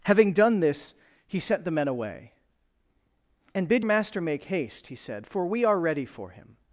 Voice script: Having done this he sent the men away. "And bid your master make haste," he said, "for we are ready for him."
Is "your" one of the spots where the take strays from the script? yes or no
yes